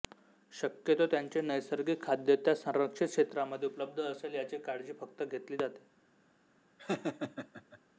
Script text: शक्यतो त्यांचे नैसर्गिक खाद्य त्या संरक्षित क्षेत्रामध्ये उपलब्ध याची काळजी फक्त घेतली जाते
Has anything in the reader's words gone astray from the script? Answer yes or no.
yes